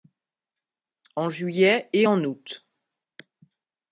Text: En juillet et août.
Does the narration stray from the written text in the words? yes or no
yes